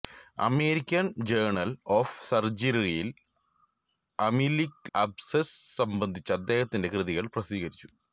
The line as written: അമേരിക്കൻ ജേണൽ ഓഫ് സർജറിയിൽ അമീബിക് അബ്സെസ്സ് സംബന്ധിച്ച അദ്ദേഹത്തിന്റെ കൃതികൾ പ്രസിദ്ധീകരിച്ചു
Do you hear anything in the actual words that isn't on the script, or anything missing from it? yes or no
no